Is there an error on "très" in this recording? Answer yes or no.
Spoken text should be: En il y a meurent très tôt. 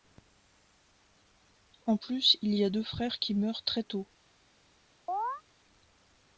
no